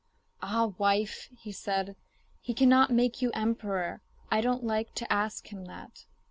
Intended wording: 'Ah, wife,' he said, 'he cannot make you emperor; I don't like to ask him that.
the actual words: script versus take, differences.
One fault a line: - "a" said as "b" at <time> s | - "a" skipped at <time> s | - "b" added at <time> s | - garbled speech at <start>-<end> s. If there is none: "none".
none